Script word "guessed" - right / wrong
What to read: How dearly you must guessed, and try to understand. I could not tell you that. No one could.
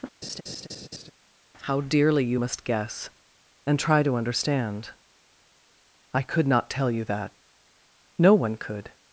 wrong